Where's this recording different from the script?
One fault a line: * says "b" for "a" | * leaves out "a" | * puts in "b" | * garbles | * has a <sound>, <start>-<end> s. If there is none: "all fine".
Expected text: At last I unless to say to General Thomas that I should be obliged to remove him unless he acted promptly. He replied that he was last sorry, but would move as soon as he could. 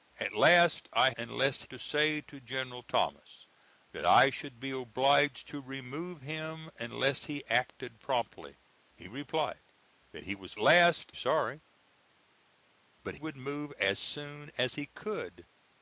all fine